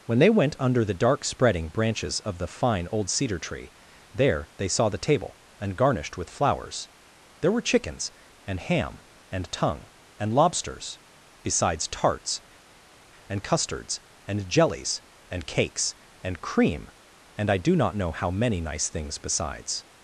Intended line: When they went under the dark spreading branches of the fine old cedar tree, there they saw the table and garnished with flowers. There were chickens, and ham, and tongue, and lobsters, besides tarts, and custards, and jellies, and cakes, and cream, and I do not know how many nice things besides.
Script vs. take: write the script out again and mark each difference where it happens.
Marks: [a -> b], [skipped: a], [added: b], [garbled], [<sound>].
When they went under the dark spreading branches of the fine old cedar tree, there they saw the table and garnished with flowers. There were chickens, and ham, and tongue, and lobsters, besides tarts, and custards, and jellies, and cakes, and cream, and I do not know how many nice things besides.